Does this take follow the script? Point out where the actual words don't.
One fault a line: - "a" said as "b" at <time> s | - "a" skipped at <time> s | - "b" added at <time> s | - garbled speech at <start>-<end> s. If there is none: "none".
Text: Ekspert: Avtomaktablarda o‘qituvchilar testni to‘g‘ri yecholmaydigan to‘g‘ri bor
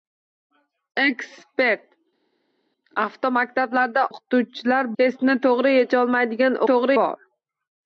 none